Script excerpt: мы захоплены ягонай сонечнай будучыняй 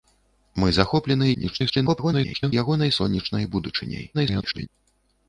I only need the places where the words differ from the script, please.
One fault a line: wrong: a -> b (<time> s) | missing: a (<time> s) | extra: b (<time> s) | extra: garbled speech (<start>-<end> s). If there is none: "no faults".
extra: garbled speech (1.3-2.5 s)
extra: garbled speech (4.1-4.7 s)